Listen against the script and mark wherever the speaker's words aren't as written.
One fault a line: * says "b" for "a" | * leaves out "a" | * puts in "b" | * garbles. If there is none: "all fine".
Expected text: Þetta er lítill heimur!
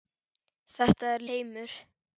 * leaves out "lítill"